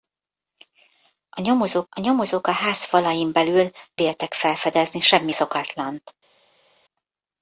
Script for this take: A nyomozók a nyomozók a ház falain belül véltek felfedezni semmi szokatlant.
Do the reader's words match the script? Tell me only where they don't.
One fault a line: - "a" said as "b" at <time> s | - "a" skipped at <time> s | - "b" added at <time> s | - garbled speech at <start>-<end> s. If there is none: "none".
none